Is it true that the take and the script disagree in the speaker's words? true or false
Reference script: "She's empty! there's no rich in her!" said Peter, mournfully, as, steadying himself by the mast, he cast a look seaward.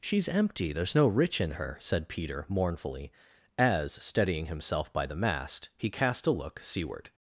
false